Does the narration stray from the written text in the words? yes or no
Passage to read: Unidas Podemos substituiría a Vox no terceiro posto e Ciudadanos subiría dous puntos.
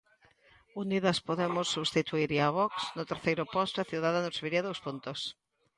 no